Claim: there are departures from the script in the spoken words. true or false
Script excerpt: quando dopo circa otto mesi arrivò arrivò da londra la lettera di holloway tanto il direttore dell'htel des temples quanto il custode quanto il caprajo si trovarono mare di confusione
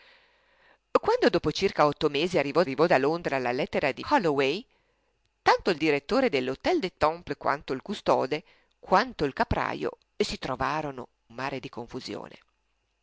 false